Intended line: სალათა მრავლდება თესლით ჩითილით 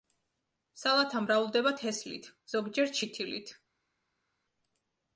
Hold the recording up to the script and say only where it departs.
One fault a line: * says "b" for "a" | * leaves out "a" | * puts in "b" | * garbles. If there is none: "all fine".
* puts in "ზოგჯერ"